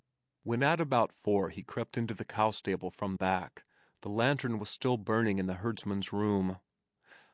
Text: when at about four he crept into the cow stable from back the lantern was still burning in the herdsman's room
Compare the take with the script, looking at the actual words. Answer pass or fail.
pass